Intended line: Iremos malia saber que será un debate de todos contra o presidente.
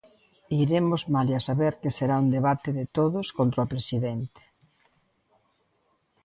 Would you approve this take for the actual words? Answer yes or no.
yes